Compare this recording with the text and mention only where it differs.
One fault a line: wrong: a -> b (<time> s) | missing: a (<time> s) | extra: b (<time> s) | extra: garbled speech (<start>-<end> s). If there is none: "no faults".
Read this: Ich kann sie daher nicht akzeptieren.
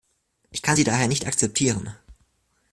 no faults